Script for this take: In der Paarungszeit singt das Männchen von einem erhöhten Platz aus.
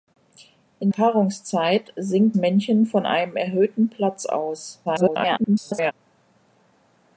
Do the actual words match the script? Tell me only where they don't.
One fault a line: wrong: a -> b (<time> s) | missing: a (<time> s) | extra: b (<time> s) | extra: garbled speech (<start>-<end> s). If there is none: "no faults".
missing: der (0.9 s)
missing: das (2.4 s)
extra: garbled speech (4.9-5.9 s)